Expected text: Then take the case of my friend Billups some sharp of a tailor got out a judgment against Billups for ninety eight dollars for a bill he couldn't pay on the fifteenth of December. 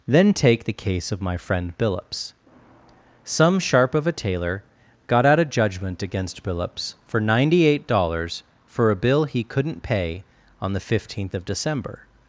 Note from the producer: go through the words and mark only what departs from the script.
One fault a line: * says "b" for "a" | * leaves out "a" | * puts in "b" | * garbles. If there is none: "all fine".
all fine